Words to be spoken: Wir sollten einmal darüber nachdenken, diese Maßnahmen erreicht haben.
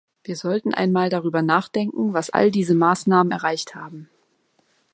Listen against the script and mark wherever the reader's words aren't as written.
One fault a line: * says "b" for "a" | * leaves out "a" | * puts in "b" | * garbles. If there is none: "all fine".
* puts in "was all"